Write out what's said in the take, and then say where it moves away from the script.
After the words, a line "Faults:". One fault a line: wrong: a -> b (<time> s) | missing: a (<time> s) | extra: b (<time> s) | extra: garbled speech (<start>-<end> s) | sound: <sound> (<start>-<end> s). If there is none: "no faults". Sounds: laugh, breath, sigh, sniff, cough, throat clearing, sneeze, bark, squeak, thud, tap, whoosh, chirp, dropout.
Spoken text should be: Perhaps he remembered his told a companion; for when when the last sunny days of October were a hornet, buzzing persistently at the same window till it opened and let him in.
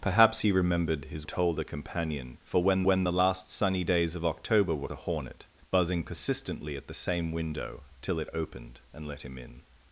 Perhaps he remembered his told a companion; for when when the last sunny days of October were a hornet, buzzing persistently at the same window till it opened and let him in.
Faults:
no faults